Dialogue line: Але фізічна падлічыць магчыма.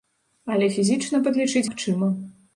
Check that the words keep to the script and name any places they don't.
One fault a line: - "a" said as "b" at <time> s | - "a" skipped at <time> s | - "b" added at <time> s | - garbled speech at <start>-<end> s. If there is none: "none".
none